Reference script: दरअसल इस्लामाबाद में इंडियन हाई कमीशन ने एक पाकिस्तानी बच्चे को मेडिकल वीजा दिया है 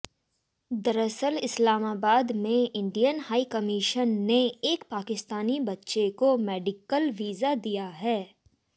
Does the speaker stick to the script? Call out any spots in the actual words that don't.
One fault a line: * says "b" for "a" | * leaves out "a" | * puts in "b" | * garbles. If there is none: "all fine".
all fine